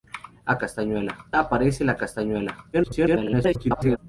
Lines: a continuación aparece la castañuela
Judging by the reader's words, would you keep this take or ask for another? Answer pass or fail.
fail